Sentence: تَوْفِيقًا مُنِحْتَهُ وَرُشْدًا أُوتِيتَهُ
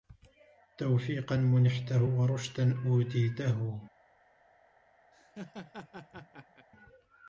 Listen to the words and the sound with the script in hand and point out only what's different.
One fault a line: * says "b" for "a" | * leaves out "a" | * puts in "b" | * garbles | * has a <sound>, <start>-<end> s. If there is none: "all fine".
* has a laugh, 5.1-6.7 s